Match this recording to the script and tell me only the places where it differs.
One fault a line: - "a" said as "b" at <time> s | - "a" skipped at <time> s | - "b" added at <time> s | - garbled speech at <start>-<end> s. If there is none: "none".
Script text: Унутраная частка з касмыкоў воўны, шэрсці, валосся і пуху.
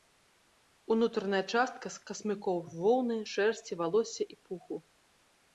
none